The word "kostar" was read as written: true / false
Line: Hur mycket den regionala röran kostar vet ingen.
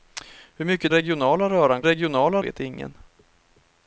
false